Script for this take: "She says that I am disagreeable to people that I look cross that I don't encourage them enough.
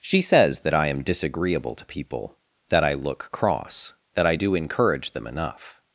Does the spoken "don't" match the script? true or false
false